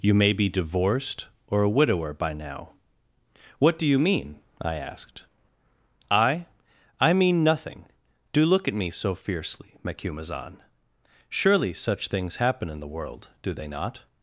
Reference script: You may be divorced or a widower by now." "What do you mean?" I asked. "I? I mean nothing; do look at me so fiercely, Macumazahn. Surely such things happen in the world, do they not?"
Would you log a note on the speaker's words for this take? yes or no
no